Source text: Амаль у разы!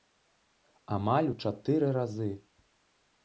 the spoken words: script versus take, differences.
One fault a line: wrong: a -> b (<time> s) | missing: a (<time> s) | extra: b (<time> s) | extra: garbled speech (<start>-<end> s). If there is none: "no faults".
extra: чатыры (1.4 s)